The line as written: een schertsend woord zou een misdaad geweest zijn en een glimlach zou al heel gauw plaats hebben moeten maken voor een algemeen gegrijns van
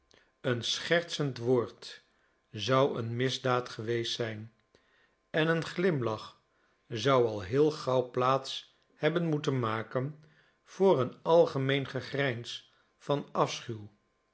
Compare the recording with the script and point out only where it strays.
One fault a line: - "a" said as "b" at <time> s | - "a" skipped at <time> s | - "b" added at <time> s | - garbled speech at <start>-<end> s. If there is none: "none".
none